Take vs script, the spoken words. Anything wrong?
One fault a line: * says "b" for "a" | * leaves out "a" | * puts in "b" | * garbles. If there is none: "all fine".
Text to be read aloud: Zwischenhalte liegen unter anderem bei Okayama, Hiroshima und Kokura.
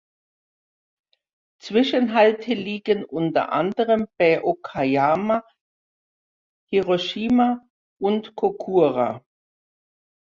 all fine